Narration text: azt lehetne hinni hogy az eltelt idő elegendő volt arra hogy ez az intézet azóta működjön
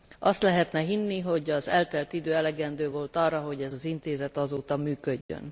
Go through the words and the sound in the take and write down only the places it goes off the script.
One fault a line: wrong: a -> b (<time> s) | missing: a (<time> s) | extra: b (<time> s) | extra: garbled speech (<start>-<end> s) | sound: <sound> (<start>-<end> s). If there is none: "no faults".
sound: dropout (5.2-5.3 s)